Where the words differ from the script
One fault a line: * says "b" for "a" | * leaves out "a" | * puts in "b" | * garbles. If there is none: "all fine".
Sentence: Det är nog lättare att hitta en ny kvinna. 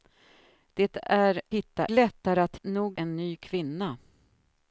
* says "hitta" for "nog"
* says "nog" for "hitta"